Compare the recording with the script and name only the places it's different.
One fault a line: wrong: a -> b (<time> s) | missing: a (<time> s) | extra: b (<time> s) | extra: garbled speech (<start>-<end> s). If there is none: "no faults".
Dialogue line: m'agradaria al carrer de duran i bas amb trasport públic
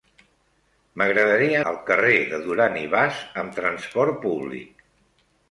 no faults